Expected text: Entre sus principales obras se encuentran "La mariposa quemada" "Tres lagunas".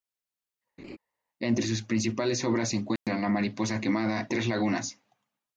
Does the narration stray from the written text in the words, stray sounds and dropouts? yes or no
yes